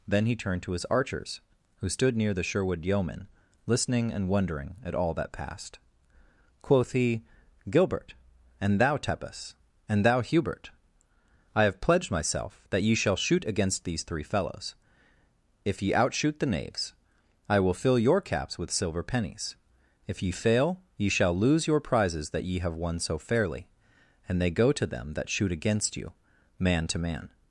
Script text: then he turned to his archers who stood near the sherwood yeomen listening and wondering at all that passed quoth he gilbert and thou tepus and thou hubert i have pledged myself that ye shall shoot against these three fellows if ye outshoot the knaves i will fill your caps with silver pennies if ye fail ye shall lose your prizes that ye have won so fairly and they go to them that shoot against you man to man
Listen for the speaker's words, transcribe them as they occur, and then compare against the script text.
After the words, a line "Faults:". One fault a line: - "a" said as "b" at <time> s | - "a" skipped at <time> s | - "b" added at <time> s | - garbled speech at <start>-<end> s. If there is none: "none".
then he turned to his archers who stood near the sherwood yeomen listening and wondering at all that passed quoth he gilbert and thou tepus and thou hubert i have pledged myself that ye shall shoot against these three fellows if ye outshoot the knaves i will fill your caps with silver pennies if ye fail ye shall lose your prizes that ye have won so fairly and they go to them that shoot against you man to man
Faults:
none